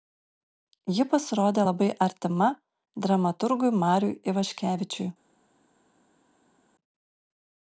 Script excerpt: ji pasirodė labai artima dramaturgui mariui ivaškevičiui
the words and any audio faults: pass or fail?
pass